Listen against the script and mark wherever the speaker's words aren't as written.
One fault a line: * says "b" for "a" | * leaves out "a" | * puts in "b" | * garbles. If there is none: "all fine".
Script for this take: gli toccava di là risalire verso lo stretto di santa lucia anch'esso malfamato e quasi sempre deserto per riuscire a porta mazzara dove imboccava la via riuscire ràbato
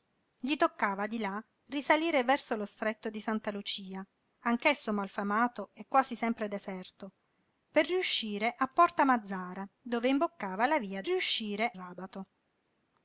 all fine